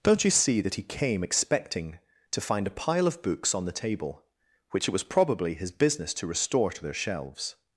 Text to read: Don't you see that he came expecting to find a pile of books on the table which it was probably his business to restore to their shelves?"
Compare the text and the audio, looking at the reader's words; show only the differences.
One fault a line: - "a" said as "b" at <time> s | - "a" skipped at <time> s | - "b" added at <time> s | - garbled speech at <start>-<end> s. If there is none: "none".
none